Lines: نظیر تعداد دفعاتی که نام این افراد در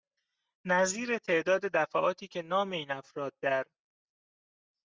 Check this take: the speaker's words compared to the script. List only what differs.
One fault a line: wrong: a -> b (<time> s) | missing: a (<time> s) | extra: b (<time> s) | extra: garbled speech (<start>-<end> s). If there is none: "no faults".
no faults